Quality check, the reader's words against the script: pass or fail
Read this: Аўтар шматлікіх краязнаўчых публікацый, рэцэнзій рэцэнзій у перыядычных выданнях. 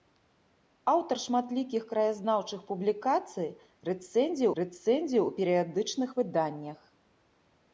pass